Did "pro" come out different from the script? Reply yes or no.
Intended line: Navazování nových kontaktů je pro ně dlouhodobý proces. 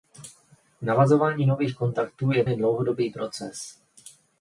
yes